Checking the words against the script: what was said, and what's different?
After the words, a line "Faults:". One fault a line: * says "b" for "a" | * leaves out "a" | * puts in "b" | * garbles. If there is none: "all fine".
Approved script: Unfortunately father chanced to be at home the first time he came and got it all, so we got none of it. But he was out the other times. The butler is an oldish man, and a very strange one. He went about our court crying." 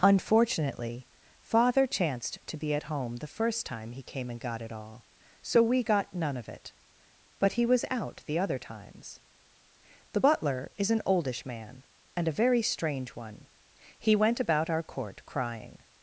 Unfortunately father chanced to be at home the first time he came and got it all, so we got none of it. But he was out the other times. The butler is an oldish man, and a very strange one. He went about our court crying."
Faults:
all fine